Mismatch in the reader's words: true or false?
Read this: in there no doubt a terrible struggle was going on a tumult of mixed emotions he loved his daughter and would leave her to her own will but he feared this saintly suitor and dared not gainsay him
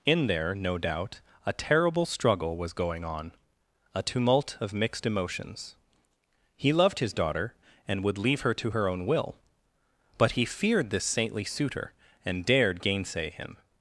true